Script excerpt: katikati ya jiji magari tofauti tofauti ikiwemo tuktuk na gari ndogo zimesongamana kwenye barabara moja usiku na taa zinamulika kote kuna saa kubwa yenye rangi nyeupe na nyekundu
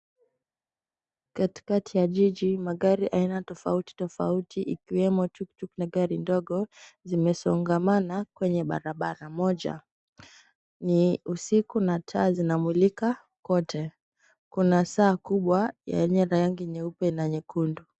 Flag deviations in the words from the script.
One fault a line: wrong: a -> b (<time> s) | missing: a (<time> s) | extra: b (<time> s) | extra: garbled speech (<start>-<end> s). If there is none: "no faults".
extra: aina (3.1 s)
extra: ni (10.8 s)